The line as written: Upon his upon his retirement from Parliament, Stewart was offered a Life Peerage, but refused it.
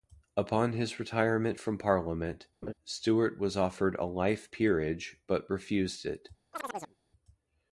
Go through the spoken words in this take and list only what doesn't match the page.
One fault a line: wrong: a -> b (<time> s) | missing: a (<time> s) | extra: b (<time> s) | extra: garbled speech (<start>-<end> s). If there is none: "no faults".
missing: upon his (1.0 s)